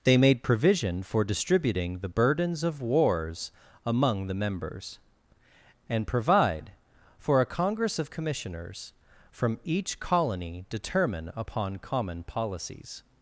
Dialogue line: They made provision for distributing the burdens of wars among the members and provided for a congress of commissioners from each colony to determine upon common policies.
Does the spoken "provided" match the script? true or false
false